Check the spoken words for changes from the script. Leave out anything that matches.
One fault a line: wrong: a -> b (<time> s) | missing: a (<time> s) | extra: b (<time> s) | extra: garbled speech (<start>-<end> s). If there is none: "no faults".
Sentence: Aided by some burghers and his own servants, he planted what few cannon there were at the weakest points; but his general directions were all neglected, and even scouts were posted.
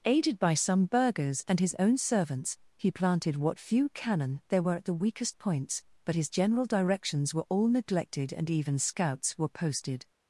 no faults